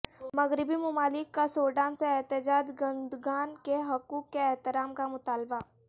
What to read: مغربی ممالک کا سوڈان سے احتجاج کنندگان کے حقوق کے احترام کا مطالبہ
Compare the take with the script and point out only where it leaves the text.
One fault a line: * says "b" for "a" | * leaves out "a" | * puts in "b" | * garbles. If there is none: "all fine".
all fine